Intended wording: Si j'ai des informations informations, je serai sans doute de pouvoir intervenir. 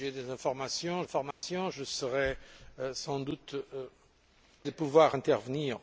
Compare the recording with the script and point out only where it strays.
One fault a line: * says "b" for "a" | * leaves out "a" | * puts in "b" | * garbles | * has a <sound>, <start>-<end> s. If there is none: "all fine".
* has a dropout, 1.3-1.4 s